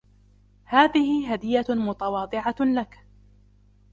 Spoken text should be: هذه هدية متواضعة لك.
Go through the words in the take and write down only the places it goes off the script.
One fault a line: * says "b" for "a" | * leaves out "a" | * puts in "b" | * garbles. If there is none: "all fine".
all fine